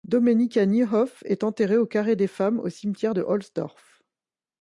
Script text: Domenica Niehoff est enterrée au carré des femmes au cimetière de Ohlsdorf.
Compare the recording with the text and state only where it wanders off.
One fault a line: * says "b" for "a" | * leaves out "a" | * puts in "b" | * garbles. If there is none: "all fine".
all fine